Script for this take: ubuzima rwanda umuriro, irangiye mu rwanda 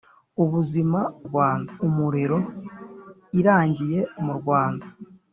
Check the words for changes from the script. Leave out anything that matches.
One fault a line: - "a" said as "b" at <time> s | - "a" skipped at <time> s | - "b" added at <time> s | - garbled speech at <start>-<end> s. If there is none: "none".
none